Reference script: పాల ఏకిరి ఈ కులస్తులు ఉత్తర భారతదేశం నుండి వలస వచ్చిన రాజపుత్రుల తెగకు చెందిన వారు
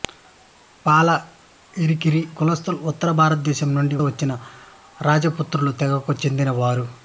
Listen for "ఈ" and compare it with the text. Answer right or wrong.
wrong